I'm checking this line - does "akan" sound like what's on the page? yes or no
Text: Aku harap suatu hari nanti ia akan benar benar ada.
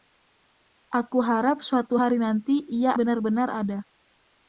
no